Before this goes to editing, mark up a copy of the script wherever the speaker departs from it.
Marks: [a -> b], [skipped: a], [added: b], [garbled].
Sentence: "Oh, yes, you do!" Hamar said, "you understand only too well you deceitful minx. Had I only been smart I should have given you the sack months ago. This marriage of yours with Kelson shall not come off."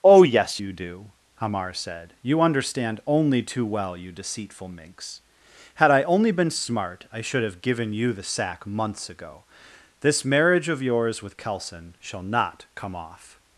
"Oh, yes, you do!" Hamar said, "you understand only too well you deceitful minx. Had I only been smart I should have given you the sack months ago. This marriage of yours with Kelson shall not come off."